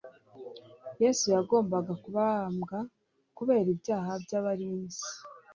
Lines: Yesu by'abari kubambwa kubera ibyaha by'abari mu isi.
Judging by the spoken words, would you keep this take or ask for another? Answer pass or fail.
fail